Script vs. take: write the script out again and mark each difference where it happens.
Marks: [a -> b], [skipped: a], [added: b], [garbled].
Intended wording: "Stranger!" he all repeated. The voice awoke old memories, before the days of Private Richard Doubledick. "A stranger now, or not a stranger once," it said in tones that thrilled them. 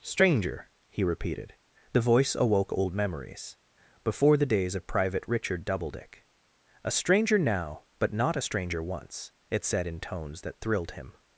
"Stranger!" he [skipped: all] repeated. The voice awoke old memories, before the days of Private Richard Doubledick. "A stranger now, [or -> but] not a stranger once," it said in tones that thrilled [them. -> him]